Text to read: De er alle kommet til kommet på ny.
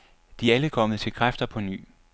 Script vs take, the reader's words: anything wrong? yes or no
yes